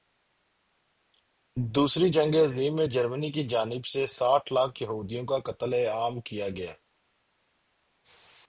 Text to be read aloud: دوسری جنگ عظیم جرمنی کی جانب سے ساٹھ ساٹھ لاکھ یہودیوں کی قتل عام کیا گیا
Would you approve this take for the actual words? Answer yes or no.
no